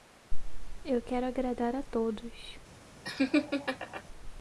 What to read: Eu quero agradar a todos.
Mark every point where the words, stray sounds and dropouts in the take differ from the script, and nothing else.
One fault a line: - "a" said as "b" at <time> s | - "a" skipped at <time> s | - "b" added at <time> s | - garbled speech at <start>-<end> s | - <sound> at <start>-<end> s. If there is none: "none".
- laugh at 3.0-4.0 s